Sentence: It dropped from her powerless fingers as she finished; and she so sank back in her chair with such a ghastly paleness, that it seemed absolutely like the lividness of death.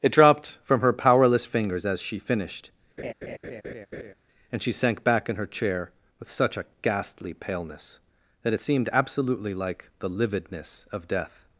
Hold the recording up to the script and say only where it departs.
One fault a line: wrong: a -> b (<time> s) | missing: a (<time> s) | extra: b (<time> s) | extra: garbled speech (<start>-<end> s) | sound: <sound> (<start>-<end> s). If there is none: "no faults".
sound: laugh (3.0-4.1 s)
missing: so (4.7 s)